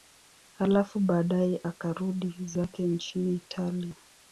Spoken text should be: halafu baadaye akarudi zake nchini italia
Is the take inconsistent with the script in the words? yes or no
no